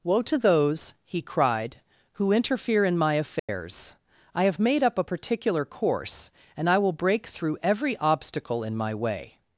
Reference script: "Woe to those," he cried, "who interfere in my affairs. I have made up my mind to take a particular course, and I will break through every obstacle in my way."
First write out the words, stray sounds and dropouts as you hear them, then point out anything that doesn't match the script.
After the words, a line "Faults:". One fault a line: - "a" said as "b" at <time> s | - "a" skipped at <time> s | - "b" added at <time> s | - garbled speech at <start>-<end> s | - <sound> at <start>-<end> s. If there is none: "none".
"Woe to those," he cried, "who interfere in my affairs. I have made up a particular course, and I will break through every obstacle in my way."
Faults:
- dropout at 3.4-3.5 s
- "my mind to take" skipped at 5.0 s